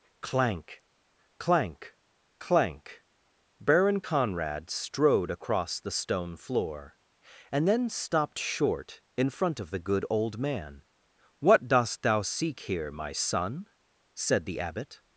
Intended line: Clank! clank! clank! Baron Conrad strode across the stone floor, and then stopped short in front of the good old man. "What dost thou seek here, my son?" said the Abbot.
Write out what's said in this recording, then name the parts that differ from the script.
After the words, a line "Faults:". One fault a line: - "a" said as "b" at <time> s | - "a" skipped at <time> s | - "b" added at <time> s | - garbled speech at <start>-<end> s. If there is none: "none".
Clank! clank! clank! Baron Conrad strode across the stone floor, and then stopped short in front of the good old man. "What dost thou seek here, my son?" said the Abbot.
Faults:
none